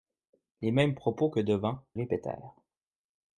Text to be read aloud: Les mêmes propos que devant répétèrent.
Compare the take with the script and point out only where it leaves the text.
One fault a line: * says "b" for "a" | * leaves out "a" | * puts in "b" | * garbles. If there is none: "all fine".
all fine